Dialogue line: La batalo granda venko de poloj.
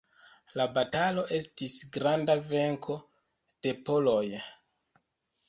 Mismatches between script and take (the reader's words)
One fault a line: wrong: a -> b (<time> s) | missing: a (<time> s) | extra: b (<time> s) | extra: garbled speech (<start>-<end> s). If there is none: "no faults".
extra: estis (1.4 s)